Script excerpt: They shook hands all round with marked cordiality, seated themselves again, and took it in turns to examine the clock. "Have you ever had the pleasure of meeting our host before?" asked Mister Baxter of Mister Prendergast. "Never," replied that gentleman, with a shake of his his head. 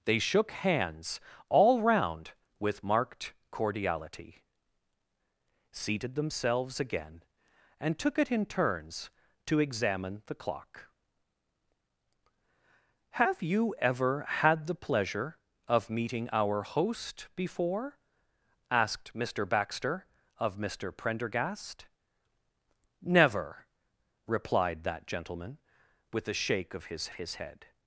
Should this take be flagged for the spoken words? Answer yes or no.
no